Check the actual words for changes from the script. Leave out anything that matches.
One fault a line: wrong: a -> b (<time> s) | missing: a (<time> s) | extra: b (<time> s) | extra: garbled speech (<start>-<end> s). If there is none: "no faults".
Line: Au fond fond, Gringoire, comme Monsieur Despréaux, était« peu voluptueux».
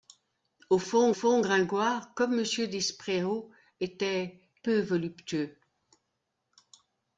no faults